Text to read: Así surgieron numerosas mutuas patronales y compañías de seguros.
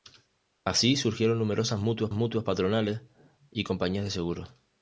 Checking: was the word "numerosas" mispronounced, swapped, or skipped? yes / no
no